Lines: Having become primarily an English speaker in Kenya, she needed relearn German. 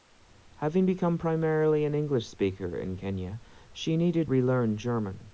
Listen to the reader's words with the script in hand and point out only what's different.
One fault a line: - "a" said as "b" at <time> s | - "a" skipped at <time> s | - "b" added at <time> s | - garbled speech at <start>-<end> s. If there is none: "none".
none